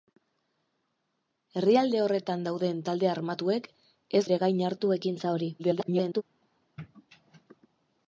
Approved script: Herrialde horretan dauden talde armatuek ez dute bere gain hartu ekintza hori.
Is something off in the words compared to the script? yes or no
yes